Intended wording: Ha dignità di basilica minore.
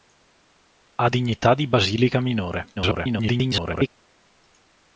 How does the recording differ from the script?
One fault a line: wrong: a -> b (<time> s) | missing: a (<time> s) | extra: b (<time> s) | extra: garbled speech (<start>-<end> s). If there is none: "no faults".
extra: garbled speech (2.8-3.9 s)